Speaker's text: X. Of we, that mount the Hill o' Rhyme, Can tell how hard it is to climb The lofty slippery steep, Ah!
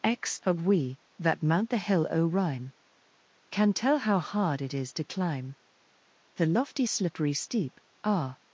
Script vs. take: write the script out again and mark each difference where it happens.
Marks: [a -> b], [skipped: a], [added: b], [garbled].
X. Of we, that mount the Hill o' Rhyme, Can tell how hard it is to climb The lofty slippery steep, Ah!